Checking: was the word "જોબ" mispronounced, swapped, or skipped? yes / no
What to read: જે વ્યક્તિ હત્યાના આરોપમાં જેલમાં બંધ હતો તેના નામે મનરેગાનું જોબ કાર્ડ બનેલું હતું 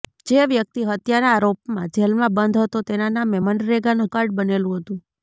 yes